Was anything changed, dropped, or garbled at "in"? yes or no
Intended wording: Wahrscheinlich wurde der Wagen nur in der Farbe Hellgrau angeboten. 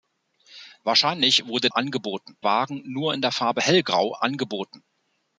no